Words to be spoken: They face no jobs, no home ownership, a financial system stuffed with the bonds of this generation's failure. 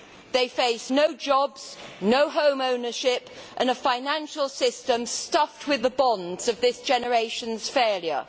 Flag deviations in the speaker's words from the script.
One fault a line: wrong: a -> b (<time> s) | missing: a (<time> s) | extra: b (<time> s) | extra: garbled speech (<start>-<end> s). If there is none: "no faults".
extra: and (3.6 s)